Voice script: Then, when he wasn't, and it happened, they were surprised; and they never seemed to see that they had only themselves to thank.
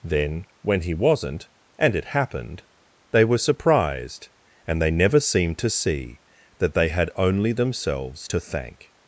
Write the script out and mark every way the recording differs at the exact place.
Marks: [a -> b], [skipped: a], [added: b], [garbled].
Then, when he wasn't, and it happened, they were surprised; and they never seemed to see that they had only themselves to thank.